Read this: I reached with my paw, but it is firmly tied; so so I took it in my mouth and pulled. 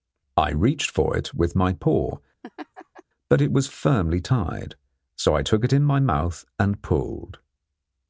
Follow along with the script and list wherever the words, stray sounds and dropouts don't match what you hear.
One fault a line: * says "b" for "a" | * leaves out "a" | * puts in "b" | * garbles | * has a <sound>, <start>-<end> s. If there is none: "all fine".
* puts in "for it"
* has a laugh, 2.4-3.0 s
* says "was" for "is"
* leaves out "so"